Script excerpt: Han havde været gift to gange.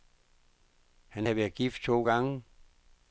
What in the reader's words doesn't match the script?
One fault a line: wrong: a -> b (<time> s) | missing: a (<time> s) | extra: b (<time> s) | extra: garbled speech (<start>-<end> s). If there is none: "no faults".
no faults